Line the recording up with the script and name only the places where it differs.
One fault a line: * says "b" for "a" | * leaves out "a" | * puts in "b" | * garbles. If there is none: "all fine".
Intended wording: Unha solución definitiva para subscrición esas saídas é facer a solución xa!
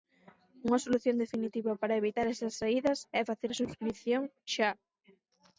* says "evitar" for "subscrición"
* says "subscrición" for "solución"